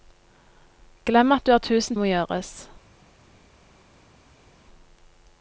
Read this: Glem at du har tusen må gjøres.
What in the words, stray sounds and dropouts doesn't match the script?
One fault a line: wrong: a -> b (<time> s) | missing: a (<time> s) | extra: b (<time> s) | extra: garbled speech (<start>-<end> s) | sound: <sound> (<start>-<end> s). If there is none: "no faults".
no faults